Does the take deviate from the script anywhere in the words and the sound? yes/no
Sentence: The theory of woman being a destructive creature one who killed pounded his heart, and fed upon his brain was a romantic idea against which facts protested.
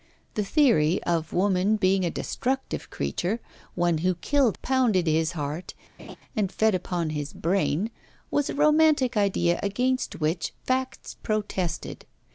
yes